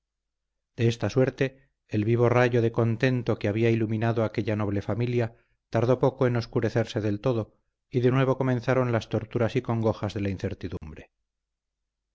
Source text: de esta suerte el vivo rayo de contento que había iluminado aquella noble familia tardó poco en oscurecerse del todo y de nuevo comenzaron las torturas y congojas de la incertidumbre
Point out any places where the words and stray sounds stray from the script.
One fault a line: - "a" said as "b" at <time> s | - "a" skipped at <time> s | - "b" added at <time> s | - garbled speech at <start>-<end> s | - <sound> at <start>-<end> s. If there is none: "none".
- dropout at 10.8-10.8 s